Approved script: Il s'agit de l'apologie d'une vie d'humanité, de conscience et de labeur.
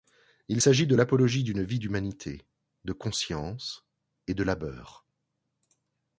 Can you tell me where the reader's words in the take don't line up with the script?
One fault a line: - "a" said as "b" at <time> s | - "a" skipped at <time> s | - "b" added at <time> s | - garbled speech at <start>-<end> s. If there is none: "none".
none